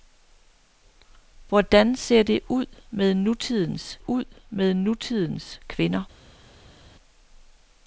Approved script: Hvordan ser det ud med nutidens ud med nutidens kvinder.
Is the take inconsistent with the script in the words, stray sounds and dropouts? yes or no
no